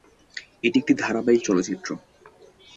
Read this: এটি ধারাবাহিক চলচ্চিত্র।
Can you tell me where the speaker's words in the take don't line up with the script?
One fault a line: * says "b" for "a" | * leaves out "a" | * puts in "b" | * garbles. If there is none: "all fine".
* puts in "একটি"